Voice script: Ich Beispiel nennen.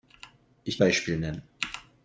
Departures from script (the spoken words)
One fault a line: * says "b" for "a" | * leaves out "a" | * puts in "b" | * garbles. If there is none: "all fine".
all fine